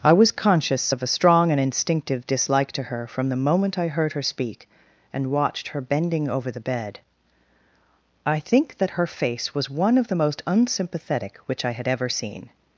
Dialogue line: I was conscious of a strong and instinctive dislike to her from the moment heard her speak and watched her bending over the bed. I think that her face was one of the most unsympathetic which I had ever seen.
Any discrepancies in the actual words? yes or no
yes